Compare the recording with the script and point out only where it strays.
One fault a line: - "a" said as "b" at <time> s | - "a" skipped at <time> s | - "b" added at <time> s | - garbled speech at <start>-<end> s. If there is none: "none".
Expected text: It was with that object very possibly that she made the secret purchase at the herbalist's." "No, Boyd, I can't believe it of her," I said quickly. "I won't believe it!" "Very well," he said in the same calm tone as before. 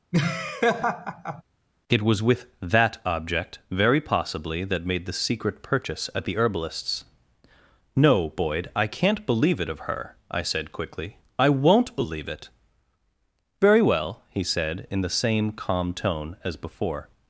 - "she" skipped at 4.8 s